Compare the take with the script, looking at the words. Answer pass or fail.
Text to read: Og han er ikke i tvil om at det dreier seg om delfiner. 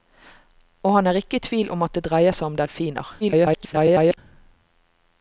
fail